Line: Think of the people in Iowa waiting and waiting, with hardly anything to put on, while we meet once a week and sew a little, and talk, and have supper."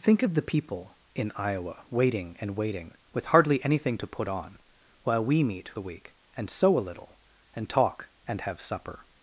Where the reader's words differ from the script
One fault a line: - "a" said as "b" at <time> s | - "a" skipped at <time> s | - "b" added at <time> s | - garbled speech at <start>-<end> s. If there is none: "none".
- "once" skipped at 5.7 s